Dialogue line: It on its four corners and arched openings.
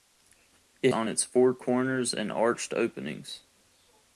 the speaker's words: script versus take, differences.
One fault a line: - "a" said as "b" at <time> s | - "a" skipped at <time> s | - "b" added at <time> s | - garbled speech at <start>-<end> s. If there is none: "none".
none